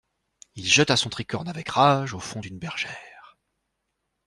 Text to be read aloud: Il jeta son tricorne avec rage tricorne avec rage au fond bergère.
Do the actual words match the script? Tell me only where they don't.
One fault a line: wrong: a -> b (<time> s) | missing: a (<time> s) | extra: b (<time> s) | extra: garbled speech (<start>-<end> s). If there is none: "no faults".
missing: tricorne avec rage (2.1 s)
extra: d'une (2.4 s)